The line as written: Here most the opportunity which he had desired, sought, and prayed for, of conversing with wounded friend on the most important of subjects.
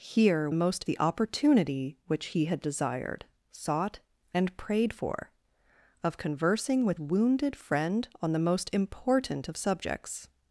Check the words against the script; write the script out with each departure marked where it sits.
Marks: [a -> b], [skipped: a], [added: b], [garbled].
Here most the opportunity which he had desired, sought, and prayed for, of conversing with wounded friend on the most important of subjects.